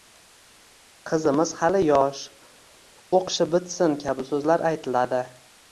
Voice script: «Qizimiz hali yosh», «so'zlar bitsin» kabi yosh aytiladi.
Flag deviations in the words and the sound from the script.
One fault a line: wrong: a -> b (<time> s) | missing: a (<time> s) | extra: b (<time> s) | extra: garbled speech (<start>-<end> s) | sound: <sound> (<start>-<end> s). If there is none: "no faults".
wrong: so'zlar -> o'qishi (3.2 s)
wrong: yosh -> so'zlar (4.4 s)